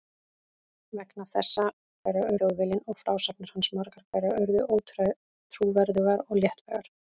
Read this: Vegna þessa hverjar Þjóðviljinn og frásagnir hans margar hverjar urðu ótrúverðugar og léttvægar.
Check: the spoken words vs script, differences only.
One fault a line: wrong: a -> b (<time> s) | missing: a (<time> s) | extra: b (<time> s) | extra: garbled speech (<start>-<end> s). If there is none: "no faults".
no faults